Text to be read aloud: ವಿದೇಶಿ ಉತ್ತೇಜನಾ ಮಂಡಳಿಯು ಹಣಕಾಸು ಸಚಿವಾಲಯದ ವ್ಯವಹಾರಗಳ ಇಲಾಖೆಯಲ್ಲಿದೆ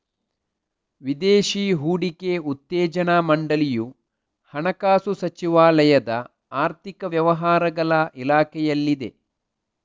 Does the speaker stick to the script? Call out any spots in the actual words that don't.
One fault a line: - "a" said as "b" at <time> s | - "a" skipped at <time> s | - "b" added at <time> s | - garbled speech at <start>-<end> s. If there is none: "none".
- "ಹೂಡಿಕೆ" added at 1.8 s
- "ಆರ್ಥಿಕ" added at 6.6 s